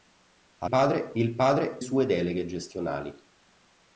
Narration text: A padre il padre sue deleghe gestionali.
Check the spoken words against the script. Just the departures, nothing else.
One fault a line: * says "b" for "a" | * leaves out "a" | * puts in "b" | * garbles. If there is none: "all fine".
all fine